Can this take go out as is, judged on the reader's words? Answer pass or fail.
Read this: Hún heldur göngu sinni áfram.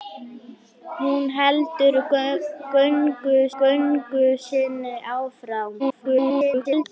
fail